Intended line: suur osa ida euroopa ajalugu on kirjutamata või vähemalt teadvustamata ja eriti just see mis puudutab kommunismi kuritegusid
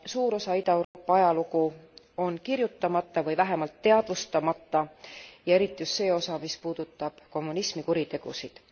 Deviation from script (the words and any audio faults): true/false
true